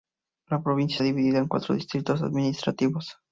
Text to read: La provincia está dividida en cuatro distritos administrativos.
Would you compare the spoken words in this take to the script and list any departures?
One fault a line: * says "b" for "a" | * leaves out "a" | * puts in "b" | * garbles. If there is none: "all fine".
* leaves out "está"